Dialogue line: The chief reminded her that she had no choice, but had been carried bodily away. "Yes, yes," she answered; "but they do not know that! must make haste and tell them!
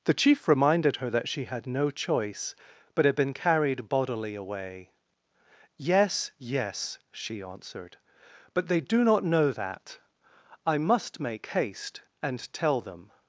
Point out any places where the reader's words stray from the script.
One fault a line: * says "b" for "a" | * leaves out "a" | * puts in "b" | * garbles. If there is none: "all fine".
* puts in "I"